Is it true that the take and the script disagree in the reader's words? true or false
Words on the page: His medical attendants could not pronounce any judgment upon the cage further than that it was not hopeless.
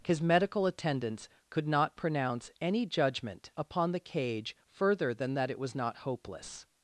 false